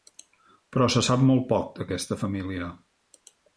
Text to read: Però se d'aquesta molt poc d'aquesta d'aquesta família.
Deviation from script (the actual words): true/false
true